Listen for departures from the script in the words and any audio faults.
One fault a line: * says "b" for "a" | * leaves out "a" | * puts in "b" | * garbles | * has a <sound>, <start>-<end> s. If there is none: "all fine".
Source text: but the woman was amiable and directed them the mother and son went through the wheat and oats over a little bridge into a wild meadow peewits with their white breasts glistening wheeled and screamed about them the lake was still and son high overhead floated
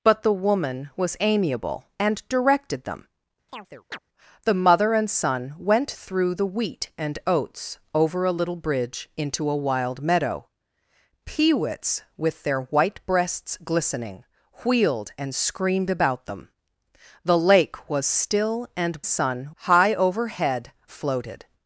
* has a chirp, 3.5-4.0 s